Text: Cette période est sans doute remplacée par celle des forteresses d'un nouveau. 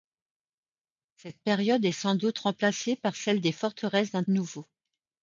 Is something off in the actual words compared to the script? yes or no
no